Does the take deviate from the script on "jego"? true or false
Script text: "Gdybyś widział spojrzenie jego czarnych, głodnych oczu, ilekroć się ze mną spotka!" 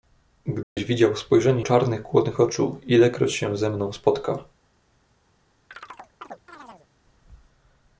true